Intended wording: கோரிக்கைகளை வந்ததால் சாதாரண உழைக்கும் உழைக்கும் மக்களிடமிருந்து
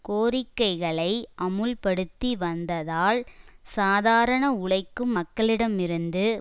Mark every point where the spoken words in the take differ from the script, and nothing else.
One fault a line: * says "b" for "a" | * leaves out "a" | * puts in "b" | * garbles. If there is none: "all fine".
* puts in "அமுல்படுத்தி"
* leaves out "உழைக்கும்"